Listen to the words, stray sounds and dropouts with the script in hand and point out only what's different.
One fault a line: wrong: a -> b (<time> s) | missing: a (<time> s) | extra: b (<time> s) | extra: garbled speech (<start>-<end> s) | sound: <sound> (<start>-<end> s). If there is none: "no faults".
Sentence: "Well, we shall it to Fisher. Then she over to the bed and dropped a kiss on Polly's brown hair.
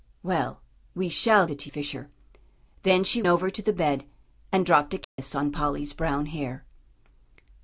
sound: dropout (5.0-5.2 s)